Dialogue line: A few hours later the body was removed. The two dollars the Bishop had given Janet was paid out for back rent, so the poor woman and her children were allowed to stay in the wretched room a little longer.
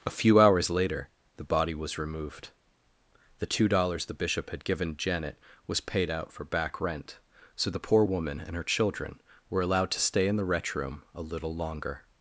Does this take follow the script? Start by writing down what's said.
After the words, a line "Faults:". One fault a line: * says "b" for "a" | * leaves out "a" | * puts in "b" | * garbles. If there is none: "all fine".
A few hours later the body was removed. The two dollars the Bishop had given Janet was paid out for back rent, so the poor woman and her children were allowed to stay in the wretch room a little longer.
Faults:
* says "wretch" for "wretched"